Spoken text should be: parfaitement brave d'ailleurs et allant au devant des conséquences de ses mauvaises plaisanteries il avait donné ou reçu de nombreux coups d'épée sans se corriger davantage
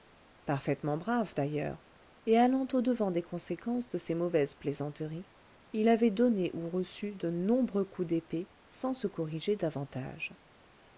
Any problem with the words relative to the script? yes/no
no